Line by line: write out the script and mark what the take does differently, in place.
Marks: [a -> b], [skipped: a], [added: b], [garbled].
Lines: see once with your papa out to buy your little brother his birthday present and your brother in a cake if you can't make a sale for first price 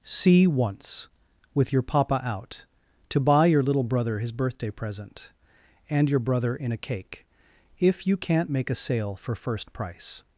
see once with your papa out to buy your little brother his birthday present and your brother in a cake if you can't make a sale for first price